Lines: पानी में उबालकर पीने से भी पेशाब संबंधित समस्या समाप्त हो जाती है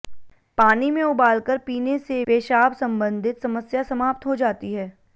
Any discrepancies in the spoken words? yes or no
yes